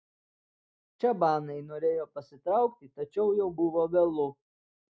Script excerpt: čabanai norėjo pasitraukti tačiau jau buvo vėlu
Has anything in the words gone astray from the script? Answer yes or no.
no